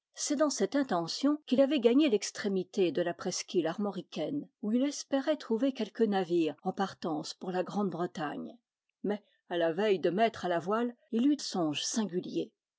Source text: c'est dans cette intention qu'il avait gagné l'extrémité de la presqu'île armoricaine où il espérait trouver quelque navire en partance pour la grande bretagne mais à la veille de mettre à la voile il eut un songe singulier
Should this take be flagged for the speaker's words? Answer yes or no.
yes